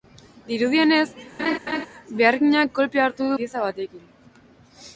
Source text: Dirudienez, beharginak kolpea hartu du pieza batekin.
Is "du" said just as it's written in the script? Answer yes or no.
yes